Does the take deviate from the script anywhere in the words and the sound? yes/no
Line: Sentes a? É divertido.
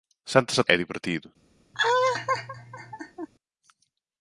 yes